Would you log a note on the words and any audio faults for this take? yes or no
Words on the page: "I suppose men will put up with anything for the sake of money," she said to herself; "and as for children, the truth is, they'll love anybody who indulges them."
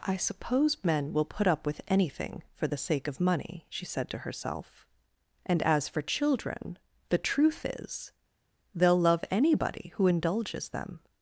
no